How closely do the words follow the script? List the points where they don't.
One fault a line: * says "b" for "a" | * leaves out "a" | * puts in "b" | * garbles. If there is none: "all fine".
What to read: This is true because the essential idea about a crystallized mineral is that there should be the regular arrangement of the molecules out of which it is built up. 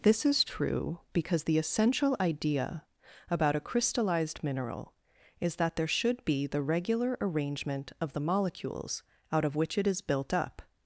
all fine